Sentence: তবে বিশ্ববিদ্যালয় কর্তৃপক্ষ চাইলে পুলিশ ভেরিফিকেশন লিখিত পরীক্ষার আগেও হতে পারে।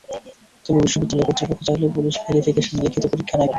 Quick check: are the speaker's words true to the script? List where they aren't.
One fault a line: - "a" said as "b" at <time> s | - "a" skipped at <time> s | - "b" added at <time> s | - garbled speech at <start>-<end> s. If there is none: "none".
- "আগেও হতে" skipped at 3.4 s